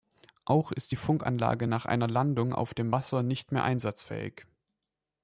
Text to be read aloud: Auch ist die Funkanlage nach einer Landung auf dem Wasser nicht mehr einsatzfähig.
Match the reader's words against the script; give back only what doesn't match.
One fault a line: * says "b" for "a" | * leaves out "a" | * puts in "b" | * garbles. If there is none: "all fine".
all fine